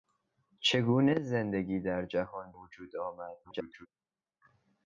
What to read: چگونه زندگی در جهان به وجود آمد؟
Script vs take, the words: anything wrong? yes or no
yes